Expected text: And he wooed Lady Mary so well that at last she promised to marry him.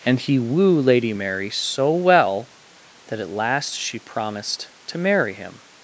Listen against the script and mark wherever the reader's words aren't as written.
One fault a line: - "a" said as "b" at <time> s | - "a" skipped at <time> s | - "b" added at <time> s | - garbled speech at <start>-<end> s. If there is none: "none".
- "wooed" said as "woo" at 0.4 s